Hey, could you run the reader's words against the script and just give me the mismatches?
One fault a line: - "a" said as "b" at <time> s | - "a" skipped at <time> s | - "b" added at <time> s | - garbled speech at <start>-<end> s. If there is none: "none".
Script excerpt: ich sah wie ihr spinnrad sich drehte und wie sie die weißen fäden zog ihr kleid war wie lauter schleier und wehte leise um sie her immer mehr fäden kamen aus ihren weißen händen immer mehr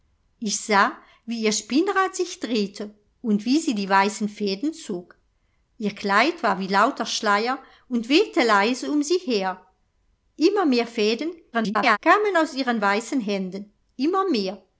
- garbled speech at 11.5-12.0 s